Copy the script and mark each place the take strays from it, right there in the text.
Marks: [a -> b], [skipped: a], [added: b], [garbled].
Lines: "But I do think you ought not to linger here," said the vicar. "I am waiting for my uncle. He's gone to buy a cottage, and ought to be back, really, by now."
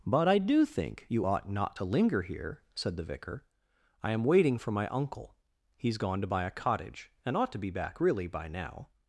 "But I do think you ought not to linger here," said the vicar. "I am waiting for my uncle. He's gone to buy a cottage, and ought to be back, really, by now."